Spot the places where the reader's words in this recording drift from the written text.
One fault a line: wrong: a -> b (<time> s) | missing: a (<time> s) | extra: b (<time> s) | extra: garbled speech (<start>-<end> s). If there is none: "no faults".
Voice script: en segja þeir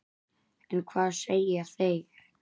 extra: hvað (0.9 s)